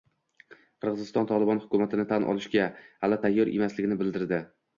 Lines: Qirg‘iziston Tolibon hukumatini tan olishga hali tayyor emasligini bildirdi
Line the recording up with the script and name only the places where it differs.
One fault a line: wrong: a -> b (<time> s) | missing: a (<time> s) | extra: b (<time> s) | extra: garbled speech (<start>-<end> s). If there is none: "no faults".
no faults